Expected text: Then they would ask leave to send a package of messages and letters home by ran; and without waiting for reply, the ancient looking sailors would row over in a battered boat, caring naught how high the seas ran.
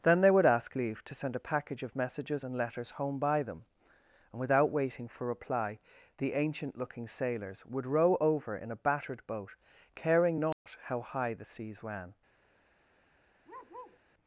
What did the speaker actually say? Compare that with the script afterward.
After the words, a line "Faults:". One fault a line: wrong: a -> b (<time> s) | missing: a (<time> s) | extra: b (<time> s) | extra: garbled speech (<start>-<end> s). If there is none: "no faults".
Then they would ask leave to send a package of messages and letters home by them; and without waiting for reply, the ancient looking sailors would row over in a battered boat, caring naught how high the seas ran.
Faults:
wrong: ran -> them (3.4 s)